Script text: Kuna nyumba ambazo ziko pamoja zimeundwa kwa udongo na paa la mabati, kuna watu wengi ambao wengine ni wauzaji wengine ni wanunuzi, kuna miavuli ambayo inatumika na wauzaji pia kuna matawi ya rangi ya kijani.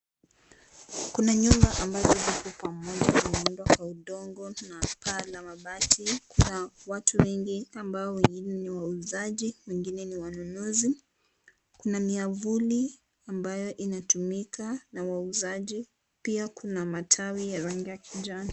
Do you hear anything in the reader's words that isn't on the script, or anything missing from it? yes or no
no